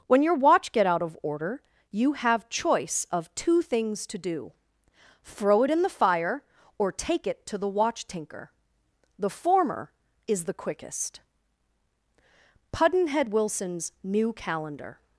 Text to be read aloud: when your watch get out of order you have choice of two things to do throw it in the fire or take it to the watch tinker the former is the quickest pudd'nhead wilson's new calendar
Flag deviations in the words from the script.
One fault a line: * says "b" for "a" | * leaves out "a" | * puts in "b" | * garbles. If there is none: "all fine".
all fine